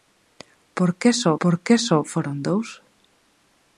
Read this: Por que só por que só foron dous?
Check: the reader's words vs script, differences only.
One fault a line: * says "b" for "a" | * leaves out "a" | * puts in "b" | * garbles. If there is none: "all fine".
all fine